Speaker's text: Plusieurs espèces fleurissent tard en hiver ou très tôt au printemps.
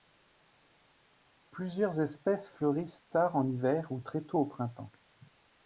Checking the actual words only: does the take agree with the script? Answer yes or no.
yes